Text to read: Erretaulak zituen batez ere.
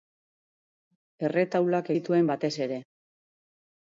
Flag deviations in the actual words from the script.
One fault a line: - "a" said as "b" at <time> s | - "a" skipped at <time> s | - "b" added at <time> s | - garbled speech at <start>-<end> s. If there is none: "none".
none